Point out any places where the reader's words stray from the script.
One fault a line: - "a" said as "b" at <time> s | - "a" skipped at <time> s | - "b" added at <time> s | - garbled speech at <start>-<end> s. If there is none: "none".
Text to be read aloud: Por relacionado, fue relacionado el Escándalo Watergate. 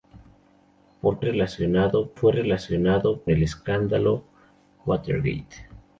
none